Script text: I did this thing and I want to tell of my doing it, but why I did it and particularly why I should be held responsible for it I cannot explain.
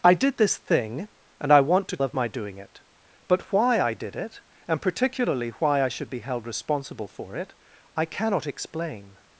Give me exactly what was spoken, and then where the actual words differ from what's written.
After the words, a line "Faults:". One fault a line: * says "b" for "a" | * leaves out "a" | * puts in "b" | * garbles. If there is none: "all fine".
I did this thing and I want to of my doing it, but why I did it and particularly why I should be held responsible for it I cannot explain.
Faults:
* leaves out "tell"